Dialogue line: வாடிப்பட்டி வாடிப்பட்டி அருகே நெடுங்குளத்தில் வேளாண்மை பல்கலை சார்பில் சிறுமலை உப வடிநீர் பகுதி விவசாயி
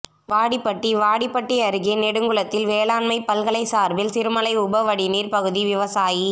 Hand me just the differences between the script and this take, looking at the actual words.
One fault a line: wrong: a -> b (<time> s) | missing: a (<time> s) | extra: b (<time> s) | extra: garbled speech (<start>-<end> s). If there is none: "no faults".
no faults